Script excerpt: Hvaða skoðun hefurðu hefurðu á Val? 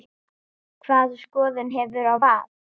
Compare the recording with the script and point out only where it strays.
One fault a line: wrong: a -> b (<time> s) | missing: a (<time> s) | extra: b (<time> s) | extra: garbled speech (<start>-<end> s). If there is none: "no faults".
missing: hefurðu (2.1 s)